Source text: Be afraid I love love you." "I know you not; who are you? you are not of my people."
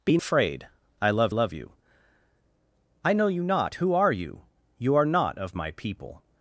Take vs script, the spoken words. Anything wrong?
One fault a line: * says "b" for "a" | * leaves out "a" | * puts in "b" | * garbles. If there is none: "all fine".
all fine